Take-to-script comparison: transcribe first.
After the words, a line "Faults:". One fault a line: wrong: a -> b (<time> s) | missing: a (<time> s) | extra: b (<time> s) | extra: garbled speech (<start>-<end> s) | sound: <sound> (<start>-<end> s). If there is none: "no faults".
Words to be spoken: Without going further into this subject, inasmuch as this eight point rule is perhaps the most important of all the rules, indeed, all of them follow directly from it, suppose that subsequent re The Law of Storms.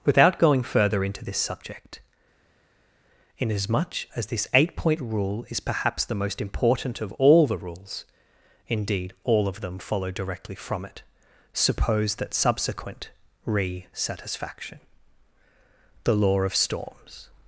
Without going further into this subject, inasmuch as this eight point rule is perhaps the most important of all the rules, indeed, all of them follow directly from it, suppose that subsequent re satisfaction The Law of Storms.
Faults:
extra: satisfaction (13.9 s)